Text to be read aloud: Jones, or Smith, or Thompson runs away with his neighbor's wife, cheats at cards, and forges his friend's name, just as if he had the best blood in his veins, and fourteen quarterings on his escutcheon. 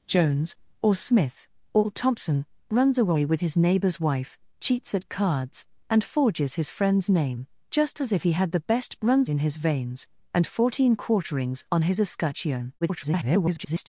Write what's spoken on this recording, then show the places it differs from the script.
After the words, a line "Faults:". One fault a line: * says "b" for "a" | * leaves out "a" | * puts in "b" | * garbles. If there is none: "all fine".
Jones, or Smith, or Thompson runs away with his neighbor's wife, cheats at cards, and forges his friend's name, just as if he had the best runs in his veins, and fourteen quarterings on his escutcheon. [garbled]
Faults:
* says "runs" for "blood"
* garbles